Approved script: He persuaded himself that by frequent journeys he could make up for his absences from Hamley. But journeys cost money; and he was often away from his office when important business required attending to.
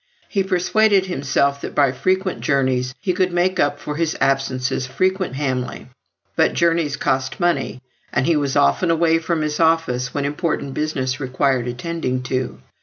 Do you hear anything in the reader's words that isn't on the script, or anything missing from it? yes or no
yes